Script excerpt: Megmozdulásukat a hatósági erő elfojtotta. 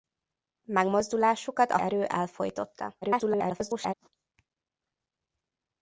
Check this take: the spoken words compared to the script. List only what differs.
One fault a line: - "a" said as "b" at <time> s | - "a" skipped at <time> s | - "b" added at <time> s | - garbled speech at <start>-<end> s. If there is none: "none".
- "hatósági" skipped at 1.8 s
- garbled speech at 3.0-3.9 s